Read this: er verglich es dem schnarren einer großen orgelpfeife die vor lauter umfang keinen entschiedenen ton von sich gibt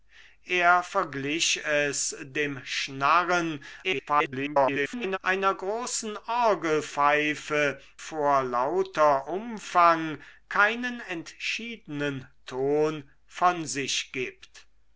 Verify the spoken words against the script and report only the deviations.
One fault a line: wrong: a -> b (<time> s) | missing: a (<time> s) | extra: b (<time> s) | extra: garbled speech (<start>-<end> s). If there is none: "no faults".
extra: garbled speech (3.8-5.2 s)
missing: die (7.8 s)